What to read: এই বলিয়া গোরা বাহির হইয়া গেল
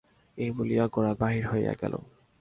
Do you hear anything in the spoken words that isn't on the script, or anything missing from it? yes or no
no